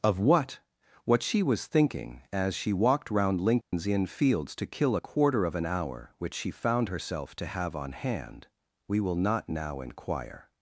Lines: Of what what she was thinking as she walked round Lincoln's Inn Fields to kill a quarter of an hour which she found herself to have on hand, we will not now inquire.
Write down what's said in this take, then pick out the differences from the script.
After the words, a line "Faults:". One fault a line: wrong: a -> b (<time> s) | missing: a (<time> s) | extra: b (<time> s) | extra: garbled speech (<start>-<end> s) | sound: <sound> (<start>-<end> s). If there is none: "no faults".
Of what what she was thinking as she walked round Lincoln's Inn Fields to kill a quarter of an hour which she found herself to have on hand, we will not now inquire.
Faults:
sound: dropout (3.6-3.7 s)